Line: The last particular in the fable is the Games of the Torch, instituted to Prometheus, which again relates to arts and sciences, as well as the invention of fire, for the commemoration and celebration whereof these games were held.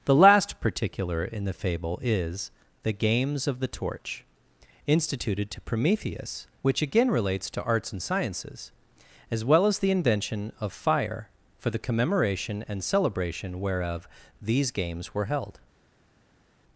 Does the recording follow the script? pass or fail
pass